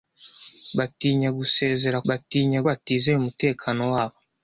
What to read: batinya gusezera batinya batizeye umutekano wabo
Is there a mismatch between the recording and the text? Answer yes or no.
no